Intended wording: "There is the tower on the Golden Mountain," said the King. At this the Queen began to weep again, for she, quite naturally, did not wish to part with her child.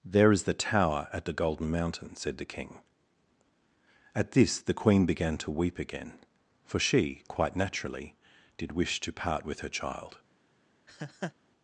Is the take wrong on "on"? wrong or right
wrong